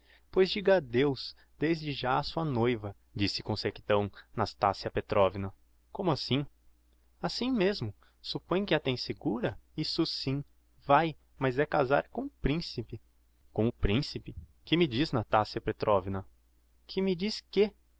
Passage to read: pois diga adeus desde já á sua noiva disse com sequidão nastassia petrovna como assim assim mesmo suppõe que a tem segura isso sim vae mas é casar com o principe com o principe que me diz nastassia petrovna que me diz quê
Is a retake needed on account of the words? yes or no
no